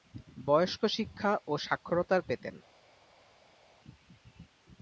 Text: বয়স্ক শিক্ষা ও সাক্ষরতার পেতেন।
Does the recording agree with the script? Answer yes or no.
yes